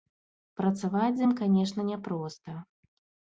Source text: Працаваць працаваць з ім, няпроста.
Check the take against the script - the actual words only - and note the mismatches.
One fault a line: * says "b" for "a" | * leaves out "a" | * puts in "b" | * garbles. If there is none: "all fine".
* leaves out "працаваць"
* puts in "канешне"